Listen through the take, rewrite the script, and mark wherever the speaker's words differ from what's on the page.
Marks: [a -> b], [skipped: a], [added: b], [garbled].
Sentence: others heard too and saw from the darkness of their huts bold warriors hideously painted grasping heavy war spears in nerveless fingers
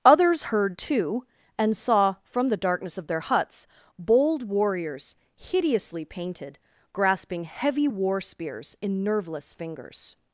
others heard too and saw from the darkness of their huts bold warriors hideously painted grasping heavy war spears in nerveless fingers